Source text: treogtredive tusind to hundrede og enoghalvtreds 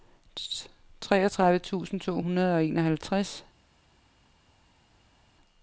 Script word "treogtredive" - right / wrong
right